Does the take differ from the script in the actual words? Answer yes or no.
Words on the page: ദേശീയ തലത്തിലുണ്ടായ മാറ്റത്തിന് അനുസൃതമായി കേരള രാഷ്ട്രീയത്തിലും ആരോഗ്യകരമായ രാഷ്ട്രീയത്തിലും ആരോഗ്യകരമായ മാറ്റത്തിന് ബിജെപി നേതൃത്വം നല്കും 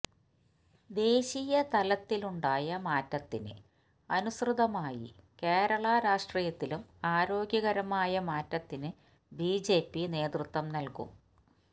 yes